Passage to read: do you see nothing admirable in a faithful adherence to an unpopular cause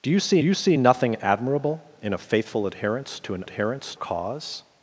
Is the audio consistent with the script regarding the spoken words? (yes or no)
no